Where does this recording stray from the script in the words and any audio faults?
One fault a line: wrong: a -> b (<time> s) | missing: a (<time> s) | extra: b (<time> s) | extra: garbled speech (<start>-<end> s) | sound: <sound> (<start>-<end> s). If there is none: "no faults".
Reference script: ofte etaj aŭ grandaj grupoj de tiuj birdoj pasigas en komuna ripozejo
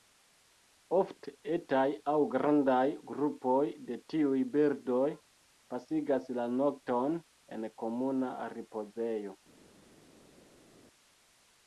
extra: la nokton (6.4 s)